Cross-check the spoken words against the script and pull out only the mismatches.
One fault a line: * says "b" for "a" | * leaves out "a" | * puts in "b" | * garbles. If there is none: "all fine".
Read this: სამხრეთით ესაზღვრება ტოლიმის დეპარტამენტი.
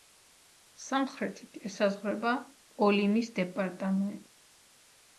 all fine